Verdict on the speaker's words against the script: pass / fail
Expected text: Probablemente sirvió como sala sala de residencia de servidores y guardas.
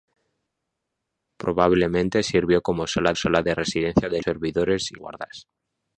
pass